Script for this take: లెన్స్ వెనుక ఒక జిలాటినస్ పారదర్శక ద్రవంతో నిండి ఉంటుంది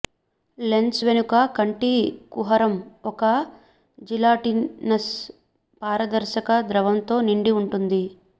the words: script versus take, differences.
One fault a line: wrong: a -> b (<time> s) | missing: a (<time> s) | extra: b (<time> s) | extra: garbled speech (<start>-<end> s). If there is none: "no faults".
extra: కంటి కుహరం (1.6 s)